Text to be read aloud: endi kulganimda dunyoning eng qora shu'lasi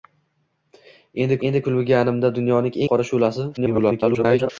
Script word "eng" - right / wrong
wrong